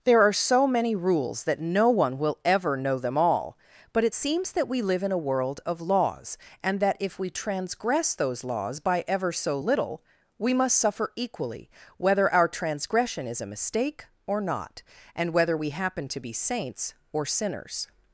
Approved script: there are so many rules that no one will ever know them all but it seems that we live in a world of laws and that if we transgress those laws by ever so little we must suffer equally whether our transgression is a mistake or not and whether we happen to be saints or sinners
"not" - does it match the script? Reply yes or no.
yes